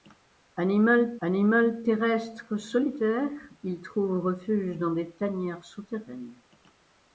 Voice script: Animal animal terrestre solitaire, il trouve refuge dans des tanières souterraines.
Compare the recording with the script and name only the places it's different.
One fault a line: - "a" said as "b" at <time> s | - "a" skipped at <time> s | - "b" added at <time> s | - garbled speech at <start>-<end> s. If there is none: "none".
none